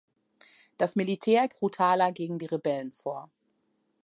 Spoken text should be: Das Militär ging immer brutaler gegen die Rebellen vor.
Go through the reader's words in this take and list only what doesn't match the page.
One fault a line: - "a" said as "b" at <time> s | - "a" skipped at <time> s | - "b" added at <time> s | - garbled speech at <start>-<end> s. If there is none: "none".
- "ging immer" skipped at 1.5 s